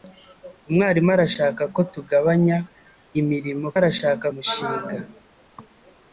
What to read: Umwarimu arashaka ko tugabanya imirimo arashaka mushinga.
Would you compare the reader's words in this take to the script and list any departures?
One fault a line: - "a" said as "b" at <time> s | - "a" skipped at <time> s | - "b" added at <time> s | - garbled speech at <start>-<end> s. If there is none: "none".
none